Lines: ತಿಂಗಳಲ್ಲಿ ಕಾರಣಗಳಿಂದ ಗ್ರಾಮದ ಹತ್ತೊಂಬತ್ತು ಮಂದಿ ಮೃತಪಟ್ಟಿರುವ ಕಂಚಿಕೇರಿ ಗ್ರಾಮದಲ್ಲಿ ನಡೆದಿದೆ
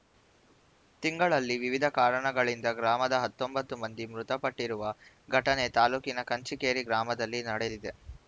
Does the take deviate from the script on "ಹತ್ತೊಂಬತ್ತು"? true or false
false